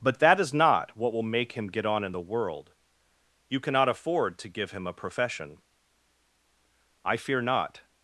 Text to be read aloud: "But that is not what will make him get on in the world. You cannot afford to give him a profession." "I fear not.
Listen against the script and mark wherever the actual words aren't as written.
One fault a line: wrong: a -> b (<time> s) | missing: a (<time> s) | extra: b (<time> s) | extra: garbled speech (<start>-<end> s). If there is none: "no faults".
no faults